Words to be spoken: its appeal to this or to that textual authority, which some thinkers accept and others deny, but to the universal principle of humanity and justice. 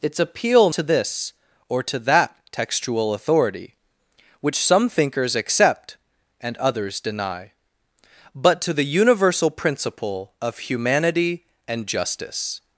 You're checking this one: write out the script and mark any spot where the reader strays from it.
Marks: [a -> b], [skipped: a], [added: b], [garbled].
its appeal to this or to that textual authority, which some thinkers accept and others deny, but to the universal principle of humanity and justice.